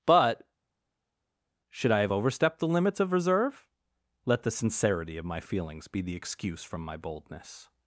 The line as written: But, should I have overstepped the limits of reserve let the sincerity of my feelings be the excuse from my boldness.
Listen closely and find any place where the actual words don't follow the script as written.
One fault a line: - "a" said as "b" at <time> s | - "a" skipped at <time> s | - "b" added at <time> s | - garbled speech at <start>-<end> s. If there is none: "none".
none